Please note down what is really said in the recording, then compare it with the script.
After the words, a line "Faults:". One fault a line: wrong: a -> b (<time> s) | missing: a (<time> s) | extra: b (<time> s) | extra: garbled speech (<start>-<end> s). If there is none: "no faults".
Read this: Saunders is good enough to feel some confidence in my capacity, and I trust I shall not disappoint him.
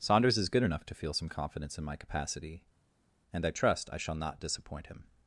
Saunders is good enough to feel some confidence in my capacity, and I trust I shall not disappoint him.
Faults:
no faults